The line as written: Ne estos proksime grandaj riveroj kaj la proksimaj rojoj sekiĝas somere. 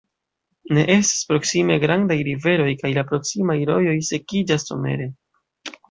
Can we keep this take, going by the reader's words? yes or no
no